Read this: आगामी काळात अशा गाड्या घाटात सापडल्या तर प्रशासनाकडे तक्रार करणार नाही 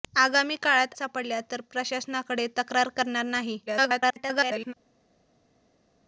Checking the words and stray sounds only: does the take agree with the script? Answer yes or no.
no